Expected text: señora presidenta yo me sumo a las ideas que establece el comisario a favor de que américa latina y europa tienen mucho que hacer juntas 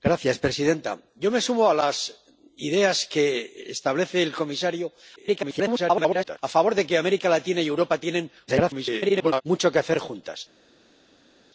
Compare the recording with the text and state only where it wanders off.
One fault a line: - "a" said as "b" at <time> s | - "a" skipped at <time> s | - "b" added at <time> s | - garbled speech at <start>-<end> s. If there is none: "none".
- garbled speech at 5.2-6.4 s
- garbled speech at 8.5-9.4 s